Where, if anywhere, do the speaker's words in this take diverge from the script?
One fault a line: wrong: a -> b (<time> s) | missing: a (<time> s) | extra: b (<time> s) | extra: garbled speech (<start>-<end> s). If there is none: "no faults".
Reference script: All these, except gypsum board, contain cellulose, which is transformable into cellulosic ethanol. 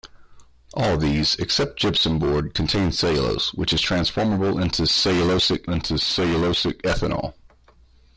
extra: into cellulosic (5.7 s)